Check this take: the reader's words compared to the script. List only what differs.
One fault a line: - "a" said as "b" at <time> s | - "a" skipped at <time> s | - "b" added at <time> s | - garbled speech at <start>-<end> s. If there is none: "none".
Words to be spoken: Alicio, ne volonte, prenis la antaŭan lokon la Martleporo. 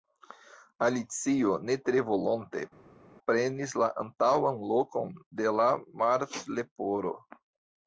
- "tre" added at 1.9 s
- "de" added at 5.4 s